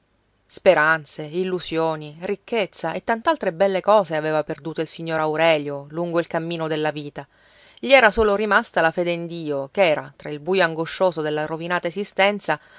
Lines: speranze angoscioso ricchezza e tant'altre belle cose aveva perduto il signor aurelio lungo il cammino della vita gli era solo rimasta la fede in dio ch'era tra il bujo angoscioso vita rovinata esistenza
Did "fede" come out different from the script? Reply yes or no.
no